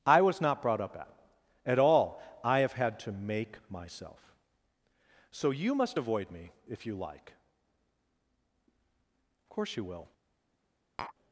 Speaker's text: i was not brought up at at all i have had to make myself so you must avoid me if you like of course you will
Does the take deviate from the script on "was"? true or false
false